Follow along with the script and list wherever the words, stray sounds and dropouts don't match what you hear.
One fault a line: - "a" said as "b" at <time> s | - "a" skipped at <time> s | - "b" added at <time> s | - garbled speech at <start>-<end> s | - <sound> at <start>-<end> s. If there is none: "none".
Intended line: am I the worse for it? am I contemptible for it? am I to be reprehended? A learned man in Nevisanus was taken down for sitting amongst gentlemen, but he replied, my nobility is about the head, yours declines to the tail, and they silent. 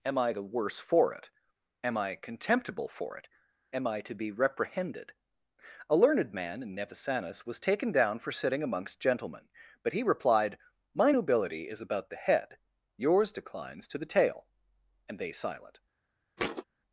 - thud at 16.4-16.6 s